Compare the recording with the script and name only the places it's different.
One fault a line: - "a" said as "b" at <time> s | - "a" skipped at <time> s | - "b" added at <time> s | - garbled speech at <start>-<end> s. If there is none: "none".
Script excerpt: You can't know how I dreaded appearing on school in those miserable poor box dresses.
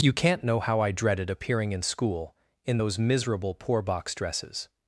- "on" said as "in" at 1.7 s